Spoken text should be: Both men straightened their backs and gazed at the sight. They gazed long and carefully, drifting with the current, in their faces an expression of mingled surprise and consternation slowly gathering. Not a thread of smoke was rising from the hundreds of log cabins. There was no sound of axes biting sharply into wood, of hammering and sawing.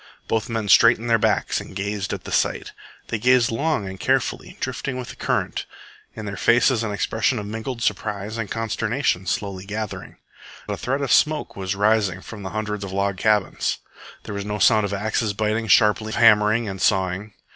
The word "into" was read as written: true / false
false